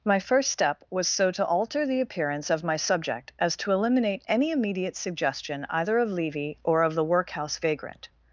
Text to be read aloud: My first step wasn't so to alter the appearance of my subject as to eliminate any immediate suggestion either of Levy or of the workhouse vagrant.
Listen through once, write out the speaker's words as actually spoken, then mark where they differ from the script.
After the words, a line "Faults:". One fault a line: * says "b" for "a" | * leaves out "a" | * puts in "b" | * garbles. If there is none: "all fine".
My first step was so to alter the appearance of my subject as to eliminate any immediate suggestion either of Levy or of the workhouse vagrant.
Faults:
* says "was" for "wasn't"